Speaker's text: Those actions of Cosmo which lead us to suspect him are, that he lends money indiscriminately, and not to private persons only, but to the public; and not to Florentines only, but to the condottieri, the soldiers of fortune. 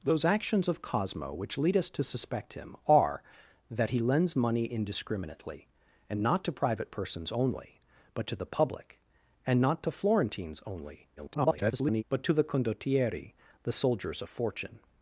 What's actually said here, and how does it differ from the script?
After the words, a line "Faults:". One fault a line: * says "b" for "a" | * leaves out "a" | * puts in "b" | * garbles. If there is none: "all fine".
Those actions of Cosmo which lead us to suspect him are, that he lends money indiscriminately, and not to private persons only, but to the public; and not to Florentines only, [garbled] but to the condottieri, the soldiers of fortune.
Faults:
* garbles